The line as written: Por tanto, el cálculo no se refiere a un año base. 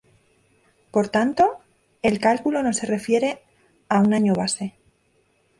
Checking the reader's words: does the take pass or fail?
pass